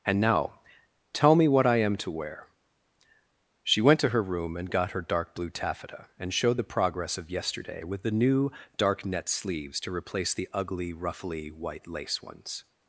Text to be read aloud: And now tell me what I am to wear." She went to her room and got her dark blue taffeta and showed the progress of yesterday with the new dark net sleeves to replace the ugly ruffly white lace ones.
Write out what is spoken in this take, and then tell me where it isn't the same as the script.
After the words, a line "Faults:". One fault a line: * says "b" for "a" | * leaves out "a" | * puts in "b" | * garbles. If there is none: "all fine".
And now tell me what I am to wear." She went to her room and got her dark blue taffeta and showed the progress of yesterday with the new dark net sleeves to replace the ugly ruffly white lace ones.
Faults:
all fine